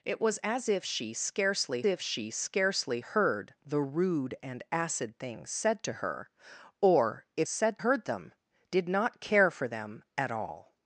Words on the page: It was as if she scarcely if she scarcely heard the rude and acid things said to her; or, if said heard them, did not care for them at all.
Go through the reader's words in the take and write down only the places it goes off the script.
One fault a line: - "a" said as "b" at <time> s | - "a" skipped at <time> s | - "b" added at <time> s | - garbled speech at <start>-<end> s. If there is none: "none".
none